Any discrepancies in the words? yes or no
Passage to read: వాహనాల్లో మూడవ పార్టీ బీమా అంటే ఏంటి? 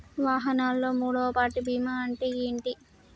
no